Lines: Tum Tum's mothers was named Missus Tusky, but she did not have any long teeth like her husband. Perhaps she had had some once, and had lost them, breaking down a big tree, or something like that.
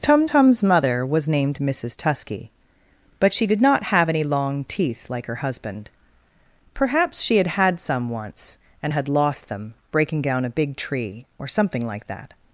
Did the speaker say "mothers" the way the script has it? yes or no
no